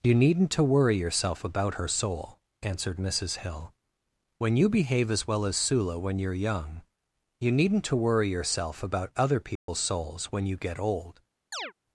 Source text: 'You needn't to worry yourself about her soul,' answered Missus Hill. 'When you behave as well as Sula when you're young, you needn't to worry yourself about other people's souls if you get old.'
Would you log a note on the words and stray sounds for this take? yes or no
yes